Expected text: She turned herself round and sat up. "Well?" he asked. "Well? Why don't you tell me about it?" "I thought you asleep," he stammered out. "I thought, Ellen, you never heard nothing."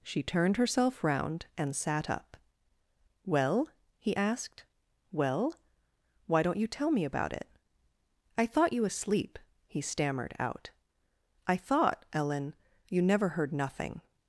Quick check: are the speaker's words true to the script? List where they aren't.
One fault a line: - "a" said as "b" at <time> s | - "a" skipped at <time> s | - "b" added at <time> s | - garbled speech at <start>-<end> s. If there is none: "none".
none